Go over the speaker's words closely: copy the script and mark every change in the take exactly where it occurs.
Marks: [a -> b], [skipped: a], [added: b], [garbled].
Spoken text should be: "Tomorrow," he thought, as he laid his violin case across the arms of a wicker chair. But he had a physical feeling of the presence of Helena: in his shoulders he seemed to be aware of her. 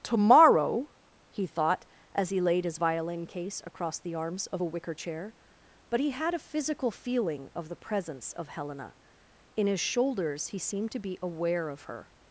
"Tomorrow," he thought, as he laid his violin case across the arms of a wicker chair. But he had a physical feeling of the presence of Helena: in his shoulders he seemed to be aware of her.